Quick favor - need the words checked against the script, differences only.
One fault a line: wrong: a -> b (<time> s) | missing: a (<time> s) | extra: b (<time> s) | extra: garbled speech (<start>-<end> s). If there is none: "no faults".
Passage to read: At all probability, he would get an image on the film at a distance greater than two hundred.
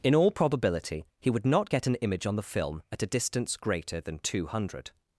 wrong: At -> In (0.0 s)
extra: not (1.4 s)